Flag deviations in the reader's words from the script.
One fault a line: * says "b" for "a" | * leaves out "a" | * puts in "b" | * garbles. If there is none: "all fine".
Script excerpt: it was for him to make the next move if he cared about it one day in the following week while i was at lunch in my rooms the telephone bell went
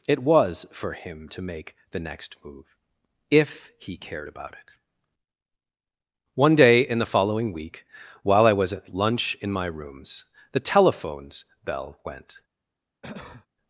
* says "telephones" for "telephone"